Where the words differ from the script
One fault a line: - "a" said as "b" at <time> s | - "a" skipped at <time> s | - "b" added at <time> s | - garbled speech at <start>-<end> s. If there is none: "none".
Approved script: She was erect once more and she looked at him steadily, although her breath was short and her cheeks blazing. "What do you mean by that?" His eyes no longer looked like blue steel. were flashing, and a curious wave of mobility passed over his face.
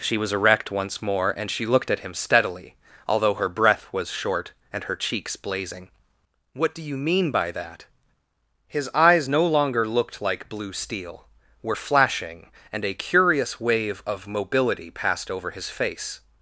none